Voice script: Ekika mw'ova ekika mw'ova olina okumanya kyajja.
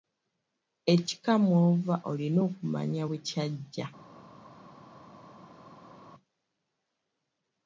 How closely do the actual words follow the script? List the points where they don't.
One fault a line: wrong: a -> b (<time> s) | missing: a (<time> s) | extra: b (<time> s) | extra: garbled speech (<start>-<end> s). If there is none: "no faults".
missing: ekika mw'ova (1.9 s)
extra: bwe (3.1 s)